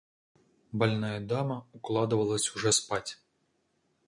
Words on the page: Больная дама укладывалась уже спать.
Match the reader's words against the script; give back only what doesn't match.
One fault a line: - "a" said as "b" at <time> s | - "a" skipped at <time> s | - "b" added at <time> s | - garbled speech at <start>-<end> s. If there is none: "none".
none